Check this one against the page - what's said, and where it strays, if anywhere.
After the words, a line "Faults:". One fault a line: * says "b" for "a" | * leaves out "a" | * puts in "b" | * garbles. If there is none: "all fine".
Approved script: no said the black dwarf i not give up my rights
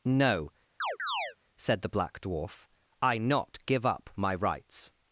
no said the black dwarf i not give up my rights
Faults:
all fine